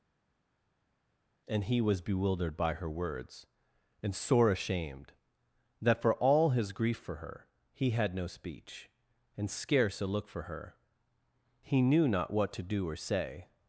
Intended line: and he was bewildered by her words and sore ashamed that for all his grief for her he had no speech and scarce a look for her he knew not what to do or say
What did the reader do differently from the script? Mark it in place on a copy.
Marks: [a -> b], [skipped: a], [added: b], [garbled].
and he was bewildered by her words and sore ashamed that for all his grief for her he had no speech and scarce a look for her he knew not what to do or say